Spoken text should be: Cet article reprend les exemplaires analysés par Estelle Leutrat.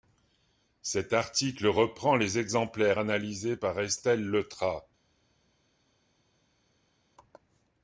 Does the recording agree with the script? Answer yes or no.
yes